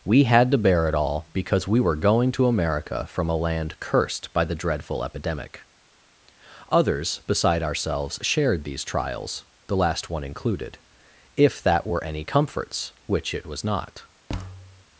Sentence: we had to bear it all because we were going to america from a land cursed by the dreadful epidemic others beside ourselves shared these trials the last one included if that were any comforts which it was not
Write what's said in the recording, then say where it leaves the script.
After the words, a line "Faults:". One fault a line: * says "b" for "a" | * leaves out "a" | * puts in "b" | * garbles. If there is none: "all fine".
we had to bear it all because we were going to america from a land cursed by the dreadful epidemic others beside ourselves shared these trials the last one included if that were any comforts which it was not
Faults:
all fine